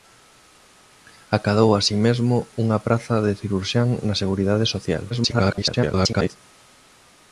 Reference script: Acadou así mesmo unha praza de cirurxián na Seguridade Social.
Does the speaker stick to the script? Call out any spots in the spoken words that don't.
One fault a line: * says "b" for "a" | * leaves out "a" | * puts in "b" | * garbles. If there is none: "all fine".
* garbles